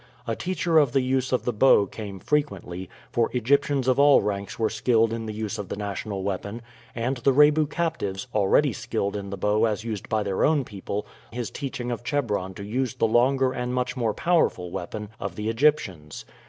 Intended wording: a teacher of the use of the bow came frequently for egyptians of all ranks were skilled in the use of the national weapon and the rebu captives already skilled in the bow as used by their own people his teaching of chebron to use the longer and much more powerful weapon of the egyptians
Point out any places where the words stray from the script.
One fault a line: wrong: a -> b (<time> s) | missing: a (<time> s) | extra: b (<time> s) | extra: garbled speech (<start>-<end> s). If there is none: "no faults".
no faults